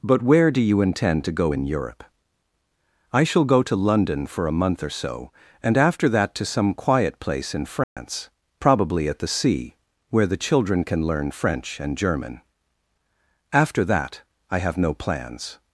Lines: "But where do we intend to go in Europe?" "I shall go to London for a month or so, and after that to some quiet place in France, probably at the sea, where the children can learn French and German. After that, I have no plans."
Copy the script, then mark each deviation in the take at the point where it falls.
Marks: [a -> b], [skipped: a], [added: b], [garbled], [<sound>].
"But where do [we -> you] intend to go in Europe?" "I shall go to London for a month or so, and after that to some quiet place in France, [dropout] probably at the sea, where the children can learn French and German. After that, I have no plans."